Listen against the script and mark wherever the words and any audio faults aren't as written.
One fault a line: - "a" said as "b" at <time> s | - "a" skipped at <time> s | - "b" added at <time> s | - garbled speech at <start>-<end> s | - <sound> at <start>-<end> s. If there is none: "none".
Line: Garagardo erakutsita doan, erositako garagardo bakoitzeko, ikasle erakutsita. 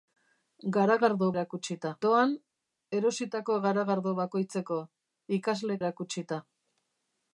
none